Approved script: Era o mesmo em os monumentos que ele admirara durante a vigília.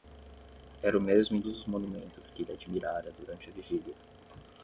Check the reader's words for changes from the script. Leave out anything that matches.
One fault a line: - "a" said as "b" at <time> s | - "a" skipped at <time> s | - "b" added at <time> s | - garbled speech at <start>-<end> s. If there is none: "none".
none